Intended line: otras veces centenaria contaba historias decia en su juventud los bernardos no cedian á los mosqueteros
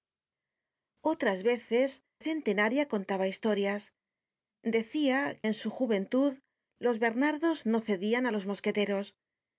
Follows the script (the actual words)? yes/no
yes